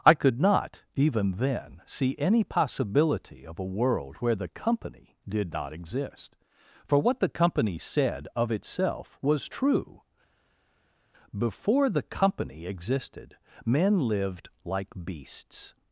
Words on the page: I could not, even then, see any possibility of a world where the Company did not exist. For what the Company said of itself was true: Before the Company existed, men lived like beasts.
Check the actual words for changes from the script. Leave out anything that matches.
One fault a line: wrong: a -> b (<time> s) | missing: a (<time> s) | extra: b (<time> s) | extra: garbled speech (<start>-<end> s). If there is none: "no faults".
no faults